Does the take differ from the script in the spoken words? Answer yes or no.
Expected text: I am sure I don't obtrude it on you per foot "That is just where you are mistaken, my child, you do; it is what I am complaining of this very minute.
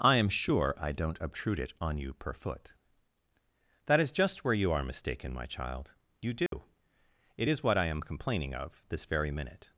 no